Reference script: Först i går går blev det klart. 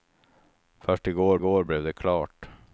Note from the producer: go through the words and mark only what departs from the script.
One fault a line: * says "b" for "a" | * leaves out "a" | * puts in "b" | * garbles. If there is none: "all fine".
all fine